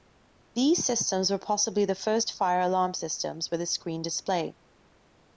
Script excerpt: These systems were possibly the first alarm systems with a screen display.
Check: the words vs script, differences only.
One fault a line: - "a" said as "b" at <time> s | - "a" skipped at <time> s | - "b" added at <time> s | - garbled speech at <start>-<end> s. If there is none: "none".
- "fire" added at 2.3 s